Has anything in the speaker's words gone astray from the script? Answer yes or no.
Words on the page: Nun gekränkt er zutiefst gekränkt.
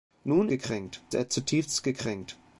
no